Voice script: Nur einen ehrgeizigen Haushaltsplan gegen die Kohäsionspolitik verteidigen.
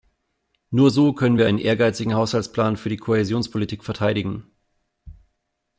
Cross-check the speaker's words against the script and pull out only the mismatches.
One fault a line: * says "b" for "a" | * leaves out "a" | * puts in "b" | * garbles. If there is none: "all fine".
* puts in "so können wir"
* says "für" for "gegen"